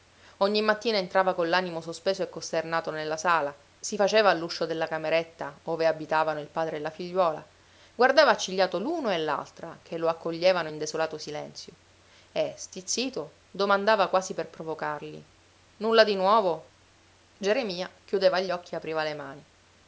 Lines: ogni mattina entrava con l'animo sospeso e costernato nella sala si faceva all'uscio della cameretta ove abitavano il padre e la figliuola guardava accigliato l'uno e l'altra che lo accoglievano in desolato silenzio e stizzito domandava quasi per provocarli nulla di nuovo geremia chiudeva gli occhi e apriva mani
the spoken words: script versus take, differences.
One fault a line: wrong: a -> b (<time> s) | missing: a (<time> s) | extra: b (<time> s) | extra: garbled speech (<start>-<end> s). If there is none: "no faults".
extra: le (19.0 s)